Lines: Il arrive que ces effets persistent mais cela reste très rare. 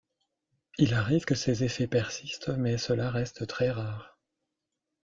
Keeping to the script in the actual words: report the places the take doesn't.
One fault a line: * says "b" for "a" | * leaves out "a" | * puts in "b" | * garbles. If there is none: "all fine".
all fine